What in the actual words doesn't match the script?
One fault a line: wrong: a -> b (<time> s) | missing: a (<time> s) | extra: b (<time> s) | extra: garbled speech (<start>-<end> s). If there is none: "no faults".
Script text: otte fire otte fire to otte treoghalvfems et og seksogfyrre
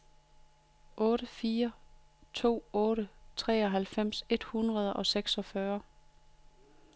missing: otte fire (1.7 s)
extra: hundrede (4.4 s)